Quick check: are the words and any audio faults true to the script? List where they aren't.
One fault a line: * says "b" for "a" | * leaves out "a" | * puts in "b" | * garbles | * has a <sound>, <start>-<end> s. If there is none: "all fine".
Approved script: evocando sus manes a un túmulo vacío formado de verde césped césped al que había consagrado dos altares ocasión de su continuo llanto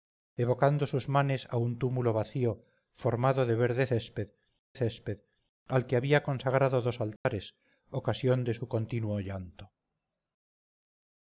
* has a dropout, 7.2-7.2 s